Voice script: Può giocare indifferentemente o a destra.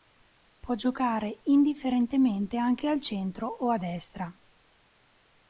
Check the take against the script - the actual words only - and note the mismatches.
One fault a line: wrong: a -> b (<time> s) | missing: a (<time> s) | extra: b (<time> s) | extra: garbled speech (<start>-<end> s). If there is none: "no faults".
extra: anche al centro (2.6 s)